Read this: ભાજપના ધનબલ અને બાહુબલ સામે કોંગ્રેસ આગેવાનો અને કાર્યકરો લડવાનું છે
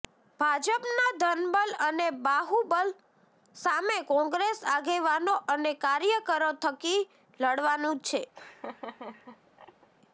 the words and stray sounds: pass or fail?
fail